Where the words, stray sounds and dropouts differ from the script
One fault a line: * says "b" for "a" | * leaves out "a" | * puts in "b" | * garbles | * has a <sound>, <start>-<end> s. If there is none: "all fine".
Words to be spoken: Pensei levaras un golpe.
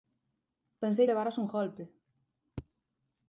all fine